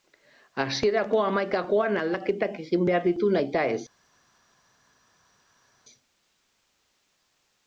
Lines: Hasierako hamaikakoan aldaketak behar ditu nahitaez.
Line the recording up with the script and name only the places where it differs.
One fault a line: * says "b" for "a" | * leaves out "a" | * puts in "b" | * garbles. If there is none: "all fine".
* puts in "egin"